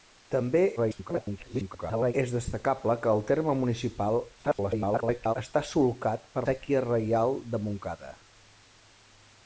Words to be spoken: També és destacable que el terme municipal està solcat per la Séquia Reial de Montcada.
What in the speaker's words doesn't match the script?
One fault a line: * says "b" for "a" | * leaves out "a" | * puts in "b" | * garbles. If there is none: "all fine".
* garbles
* garbles
* leaves out "la"